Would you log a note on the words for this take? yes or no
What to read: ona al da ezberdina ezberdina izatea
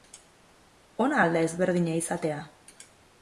yes